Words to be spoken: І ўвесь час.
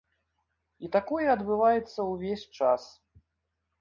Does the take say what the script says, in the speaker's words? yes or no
no